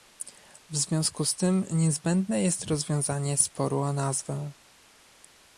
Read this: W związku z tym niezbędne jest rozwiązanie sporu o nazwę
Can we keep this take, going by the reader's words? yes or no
yes